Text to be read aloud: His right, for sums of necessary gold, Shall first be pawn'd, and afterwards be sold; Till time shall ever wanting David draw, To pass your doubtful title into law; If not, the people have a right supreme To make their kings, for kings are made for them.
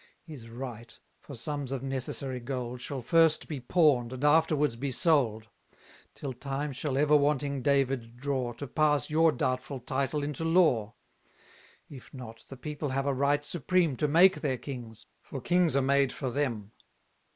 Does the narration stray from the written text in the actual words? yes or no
no